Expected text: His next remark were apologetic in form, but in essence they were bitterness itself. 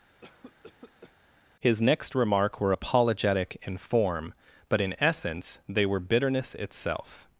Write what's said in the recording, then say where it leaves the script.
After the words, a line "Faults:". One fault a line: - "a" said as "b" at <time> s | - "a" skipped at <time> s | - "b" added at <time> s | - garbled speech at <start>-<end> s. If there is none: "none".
His next remark were apologetic in form, but in essence they were bitterness itself.
Faults:
none